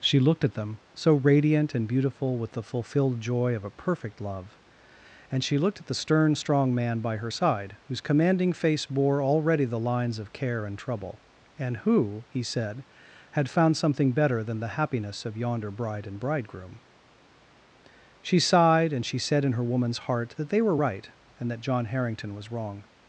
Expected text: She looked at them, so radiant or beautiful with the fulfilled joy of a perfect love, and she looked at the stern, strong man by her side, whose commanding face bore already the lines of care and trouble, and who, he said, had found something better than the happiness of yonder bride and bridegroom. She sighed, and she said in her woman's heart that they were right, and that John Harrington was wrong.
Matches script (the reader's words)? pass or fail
fail